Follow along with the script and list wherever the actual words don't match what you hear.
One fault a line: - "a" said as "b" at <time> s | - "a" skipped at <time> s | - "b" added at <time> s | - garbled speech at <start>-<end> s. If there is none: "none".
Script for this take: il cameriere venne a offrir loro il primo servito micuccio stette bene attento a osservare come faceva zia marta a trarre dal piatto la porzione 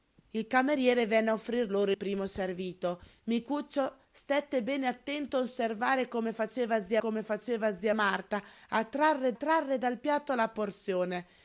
- "il" skipped at 1.9 s
- "come faceva zia" added at 7.0 s
- "trarre" added at 9.3 s